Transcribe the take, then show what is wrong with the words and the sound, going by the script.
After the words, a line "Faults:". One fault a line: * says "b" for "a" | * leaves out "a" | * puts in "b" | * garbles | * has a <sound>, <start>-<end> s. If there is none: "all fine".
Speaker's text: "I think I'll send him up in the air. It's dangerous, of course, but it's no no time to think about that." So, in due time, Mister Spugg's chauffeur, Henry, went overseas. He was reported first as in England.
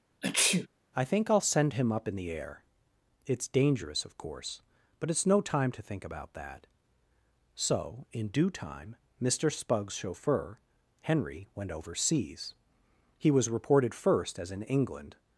"I think I'll send him up in the air. It's dangerous, of course, but it's no time to think about that." So, in due time, Mister Spugg's chauffeur, Henry, went overseas. He was reported first as in England.
Faults:
* has a sneeze, 0.2-0.7 s
* leaves out "no"